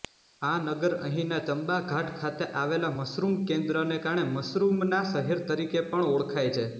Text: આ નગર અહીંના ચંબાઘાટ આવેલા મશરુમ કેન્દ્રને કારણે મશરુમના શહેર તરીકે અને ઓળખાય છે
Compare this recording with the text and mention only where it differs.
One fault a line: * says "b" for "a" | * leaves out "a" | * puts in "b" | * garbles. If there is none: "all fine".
* puts in "ખાતે"
* says "પણ" for "અને"